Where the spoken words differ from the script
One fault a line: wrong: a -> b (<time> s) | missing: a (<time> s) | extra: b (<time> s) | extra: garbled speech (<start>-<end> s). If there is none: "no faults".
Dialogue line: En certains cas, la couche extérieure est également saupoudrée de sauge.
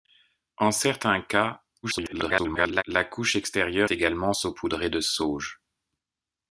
extra: garbled speech (1.8-2.8 s)
missing: est (3.9 s)